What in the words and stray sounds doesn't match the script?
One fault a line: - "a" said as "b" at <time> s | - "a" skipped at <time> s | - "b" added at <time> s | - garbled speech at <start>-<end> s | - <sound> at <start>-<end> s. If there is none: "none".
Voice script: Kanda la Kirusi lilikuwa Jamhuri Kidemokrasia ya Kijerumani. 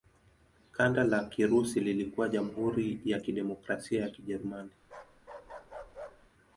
- "ya" added at 3.0 s
- bark at 4.8-6.3 s